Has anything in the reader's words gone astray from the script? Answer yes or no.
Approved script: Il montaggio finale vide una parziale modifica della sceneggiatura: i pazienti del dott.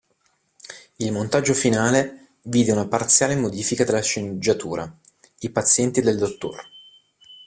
no